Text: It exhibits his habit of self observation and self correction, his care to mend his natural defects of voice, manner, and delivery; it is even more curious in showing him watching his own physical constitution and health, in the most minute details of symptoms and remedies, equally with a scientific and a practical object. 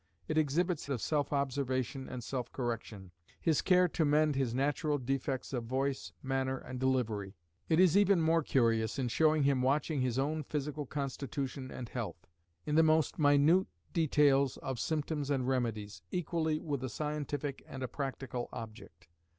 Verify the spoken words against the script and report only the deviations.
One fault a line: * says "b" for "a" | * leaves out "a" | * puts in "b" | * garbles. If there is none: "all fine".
* leaves out "his habit"